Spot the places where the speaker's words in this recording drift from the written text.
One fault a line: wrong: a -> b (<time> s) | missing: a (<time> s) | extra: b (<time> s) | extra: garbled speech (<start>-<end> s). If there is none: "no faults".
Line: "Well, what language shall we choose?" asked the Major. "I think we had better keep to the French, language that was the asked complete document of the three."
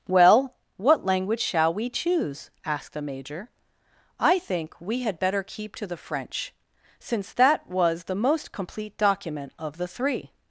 wrong: language -> since (7.0 s)
wrong: asked -> most (8.2 s)